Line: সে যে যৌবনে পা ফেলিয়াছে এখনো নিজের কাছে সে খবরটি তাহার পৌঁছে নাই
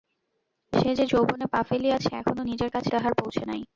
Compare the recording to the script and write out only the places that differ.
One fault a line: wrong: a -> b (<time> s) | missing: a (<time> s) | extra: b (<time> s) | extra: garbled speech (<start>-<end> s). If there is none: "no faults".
missing: সে খবরটি (2.9 s)